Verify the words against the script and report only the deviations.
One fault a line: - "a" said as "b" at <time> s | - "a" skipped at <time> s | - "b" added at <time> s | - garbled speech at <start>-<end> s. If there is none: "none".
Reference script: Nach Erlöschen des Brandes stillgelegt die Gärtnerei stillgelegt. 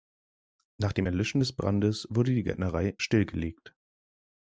- "dem" added at 0.9 s
- "stillgelegt" said as "wurde" at 2.1 s